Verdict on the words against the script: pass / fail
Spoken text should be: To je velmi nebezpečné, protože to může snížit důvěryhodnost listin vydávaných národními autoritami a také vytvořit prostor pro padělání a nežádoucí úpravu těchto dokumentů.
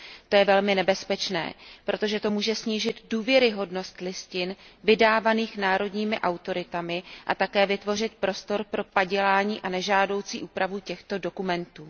pass